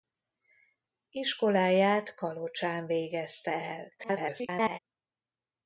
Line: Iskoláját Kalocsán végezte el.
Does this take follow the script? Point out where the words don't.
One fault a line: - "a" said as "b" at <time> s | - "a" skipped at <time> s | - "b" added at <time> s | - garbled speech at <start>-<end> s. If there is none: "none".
- garbled speech at 4.0-4.8 s